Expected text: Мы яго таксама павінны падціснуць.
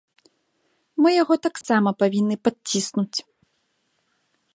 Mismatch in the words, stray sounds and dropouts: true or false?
true